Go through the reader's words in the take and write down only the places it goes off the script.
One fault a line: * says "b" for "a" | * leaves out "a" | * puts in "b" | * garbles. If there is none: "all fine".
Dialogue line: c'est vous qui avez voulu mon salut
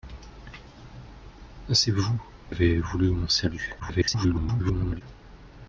* leaves out "qui"
* garbles